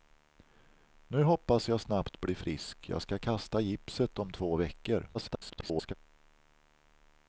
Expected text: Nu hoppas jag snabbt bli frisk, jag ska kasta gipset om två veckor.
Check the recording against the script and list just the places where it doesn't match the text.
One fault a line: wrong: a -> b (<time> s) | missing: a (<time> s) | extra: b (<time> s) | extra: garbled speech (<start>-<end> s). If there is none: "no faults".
extra: garbled speech (5.1-5.9 s)